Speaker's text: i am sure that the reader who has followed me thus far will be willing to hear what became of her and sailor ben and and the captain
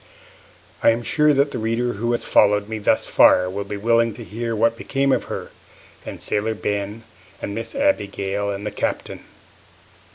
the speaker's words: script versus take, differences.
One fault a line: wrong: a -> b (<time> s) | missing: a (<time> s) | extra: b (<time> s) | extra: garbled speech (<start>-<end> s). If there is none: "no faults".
extra: miss abigail (7.5 s)